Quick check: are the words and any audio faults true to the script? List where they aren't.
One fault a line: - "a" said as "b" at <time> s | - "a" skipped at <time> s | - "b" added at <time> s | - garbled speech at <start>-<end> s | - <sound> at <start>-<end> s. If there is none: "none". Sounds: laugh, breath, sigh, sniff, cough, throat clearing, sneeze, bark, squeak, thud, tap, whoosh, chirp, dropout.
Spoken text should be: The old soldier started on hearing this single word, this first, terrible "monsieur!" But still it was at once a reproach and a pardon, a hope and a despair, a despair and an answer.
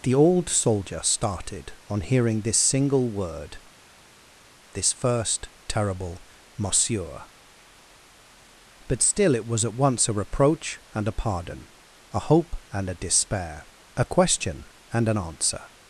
- "despair" said as "question" at 14.1 s